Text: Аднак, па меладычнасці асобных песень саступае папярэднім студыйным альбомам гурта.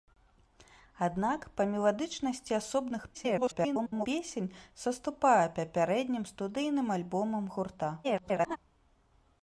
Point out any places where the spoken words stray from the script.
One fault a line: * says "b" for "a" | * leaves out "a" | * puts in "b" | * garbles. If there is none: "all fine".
* garbles
* garbles